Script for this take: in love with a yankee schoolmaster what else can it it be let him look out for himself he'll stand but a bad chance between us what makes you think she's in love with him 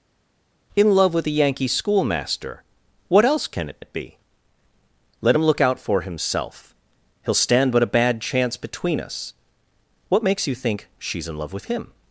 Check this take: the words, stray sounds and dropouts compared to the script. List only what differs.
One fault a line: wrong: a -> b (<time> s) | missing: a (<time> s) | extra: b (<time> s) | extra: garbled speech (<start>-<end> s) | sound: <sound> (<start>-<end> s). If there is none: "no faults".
no faults